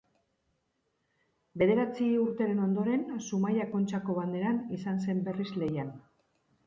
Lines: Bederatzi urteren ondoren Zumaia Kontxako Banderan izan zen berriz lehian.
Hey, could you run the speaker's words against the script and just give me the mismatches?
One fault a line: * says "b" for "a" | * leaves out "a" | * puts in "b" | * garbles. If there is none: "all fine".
all fine